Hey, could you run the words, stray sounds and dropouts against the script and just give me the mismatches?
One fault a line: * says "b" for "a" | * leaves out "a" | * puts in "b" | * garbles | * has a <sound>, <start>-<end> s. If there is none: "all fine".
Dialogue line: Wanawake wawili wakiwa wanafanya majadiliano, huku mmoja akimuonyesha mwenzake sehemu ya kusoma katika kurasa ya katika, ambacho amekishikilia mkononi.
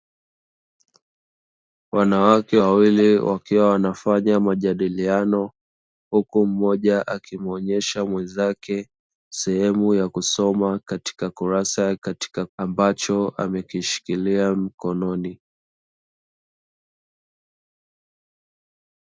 all fine